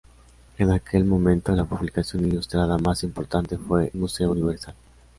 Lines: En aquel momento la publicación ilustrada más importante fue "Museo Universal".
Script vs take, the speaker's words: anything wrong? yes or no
no